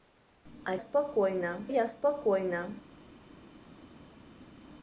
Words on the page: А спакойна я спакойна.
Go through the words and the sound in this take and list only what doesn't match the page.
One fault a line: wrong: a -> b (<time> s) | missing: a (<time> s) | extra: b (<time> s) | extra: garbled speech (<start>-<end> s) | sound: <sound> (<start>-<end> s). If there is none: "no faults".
no faults